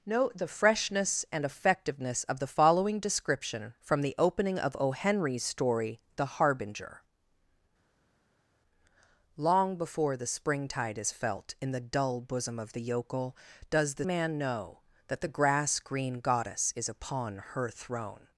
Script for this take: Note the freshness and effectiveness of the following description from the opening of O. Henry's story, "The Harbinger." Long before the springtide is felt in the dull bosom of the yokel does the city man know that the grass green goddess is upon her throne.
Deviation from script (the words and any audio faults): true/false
true